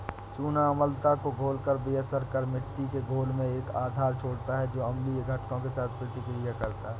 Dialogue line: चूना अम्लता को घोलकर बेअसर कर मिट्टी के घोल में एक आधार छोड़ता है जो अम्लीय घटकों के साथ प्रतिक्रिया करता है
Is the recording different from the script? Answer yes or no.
no